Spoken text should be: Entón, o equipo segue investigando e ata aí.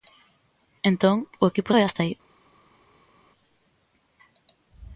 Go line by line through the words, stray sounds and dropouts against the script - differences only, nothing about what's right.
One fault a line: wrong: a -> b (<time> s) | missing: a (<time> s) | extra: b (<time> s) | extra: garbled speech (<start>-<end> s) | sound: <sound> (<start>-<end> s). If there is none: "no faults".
missing: segue investigando (1.7 s)